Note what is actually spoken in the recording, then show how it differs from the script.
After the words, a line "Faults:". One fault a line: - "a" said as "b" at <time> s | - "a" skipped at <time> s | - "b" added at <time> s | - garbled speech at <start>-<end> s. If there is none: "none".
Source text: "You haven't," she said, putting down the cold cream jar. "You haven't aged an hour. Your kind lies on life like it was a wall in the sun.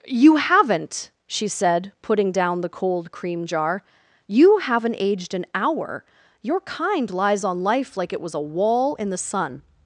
"You haven't," she said, putting down the cold cream jar. "You haven't aged an hour. Your kind lies on life like it was a wall in the sun.
Faults:
none